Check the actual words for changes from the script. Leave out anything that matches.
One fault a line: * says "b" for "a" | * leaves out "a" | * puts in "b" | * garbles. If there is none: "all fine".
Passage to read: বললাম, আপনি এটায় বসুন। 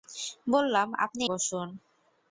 * leaves out "এটায়"